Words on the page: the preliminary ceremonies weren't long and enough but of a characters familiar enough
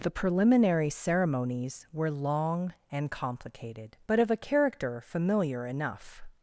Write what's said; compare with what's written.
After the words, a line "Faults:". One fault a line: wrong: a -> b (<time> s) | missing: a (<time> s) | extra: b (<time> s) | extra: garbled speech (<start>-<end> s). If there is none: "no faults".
the preliminary ceremonies were long and complicated but of a character familiar enough
Faults:
wrong: weren't -> were (1.9 s)
wrong: enough -> complicated (3.1 s)
wrong: characters -> character (4.4 s)